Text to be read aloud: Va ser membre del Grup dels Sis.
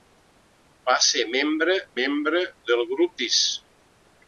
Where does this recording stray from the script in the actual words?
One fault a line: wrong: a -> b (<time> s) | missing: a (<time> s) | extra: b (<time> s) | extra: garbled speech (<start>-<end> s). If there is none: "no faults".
extra: membre (2.0 s)
missing: dels (3.2 s)